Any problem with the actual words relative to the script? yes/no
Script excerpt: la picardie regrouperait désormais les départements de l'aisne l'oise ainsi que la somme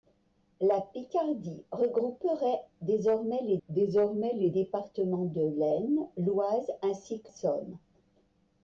yes